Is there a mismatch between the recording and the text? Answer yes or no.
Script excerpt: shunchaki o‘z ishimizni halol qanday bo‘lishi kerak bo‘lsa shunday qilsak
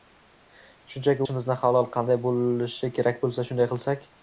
yes